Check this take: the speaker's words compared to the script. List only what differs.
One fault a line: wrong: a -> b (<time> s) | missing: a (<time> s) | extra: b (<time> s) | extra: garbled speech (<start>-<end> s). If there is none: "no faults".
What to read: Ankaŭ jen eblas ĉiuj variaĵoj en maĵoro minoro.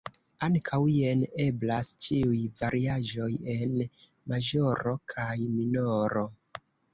extra: kaj (5.2 s)